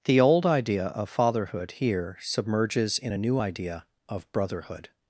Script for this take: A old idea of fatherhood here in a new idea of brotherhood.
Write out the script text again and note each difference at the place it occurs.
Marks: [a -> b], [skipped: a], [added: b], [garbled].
[A -> The] old idea of fatherhood here [added: submerges] in a new idea of brotherhood.